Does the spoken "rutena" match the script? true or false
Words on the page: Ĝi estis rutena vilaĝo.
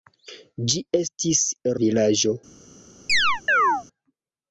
false